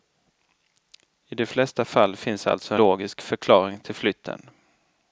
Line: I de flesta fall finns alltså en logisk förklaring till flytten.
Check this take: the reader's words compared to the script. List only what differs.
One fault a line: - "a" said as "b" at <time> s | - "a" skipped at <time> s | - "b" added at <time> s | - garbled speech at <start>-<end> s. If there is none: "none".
- "en" skipped at 2.8 s